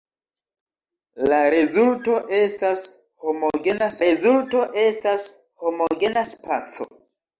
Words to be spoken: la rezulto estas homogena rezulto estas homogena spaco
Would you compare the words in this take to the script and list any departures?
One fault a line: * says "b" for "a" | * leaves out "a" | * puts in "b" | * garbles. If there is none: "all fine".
all fine